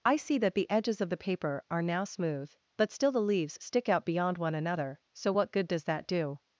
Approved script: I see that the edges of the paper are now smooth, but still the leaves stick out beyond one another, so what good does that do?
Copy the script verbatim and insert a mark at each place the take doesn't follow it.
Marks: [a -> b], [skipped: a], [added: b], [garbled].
I see that the edges of the paper are now smooth, but still the leaves stick out beyond one another, so what good does that do?